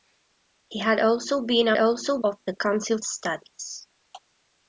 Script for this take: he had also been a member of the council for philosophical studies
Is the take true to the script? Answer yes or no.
no